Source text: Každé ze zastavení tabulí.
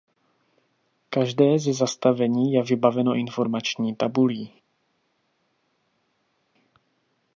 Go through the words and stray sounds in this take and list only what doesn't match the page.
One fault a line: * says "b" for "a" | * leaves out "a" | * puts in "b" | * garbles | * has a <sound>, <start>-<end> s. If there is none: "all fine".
* puts in "je vybaveno informační"